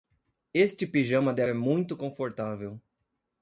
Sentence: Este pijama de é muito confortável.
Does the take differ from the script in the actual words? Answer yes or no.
no